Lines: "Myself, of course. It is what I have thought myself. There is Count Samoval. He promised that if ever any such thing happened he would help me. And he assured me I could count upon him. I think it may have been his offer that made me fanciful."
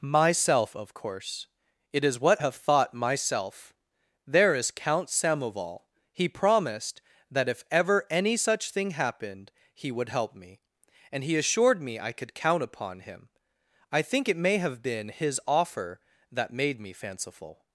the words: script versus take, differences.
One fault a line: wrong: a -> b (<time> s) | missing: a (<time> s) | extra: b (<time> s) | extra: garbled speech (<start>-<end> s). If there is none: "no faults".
missing: I (2.4 s)